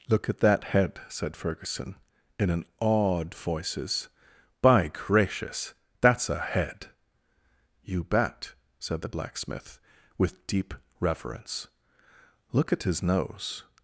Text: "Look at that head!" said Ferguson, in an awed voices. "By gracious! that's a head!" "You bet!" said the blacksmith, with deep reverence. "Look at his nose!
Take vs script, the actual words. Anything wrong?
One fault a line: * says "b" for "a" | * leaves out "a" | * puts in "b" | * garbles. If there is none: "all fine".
all fine